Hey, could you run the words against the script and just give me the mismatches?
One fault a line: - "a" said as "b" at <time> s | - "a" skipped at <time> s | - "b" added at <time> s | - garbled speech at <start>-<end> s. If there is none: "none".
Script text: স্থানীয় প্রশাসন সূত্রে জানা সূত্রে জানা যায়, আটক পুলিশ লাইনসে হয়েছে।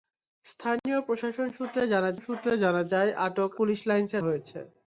none